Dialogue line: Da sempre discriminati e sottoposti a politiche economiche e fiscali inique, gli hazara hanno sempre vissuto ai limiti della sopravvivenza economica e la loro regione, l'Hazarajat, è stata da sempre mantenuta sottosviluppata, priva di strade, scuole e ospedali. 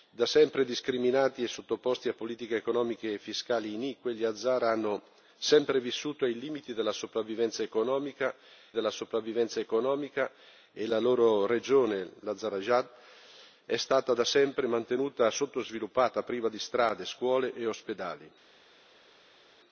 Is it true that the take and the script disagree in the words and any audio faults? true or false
true